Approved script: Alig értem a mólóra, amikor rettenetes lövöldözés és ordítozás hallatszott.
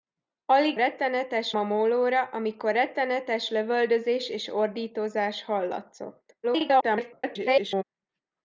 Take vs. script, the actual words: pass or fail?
fail